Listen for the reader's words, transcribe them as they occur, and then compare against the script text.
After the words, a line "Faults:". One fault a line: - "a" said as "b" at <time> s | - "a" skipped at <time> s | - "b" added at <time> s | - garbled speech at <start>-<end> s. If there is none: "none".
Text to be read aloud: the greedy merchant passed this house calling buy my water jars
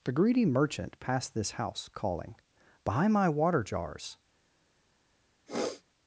the greedy merchant passed this house calling buy my water jars
Faults:
none